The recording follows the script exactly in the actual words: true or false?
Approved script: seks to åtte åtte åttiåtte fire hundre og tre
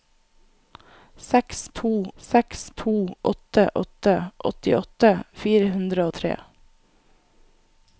false